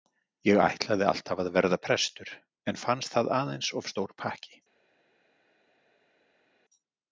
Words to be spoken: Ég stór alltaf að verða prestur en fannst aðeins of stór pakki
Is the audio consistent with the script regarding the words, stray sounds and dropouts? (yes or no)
no